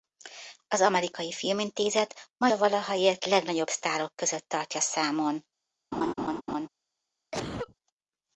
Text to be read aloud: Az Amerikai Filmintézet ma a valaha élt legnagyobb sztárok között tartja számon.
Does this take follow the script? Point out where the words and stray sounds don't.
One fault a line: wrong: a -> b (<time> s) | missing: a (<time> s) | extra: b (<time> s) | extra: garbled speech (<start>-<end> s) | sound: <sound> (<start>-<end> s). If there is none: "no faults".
sound: laugh (5.9-6.7 s)
sound: cough (7.3-7.8 s)